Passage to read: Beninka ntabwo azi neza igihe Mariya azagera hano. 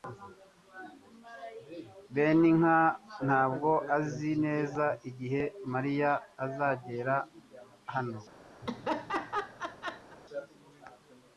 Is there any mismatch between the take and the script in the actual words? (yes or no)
no